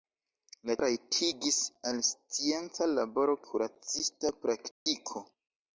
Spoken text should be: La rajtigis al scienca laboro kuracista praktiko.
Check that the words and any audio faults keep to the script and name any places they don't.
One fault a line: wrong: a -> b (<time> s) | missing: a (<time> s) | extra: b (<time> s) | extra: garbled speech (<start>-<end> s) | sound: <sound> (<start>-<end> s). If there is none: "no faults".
sound: dropout (4.7-4.9 s)